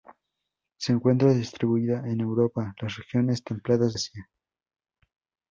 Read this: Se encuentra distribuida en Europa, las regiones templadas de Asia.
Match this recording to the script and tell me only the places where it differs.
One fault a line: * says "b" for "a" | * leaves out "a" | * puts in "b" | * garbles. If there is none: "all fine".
* leaves out "de"